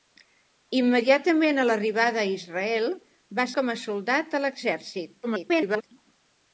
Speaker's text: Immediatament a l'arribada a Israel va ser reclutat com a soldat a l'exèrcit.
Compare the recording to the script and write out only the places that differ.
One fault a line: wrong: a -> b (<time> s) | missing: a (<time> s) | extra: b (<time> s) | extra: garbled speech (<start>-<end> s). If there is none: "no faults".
missing: ser reclutat (3.5 s)
extra: garbled speech (5.2-5.8 s)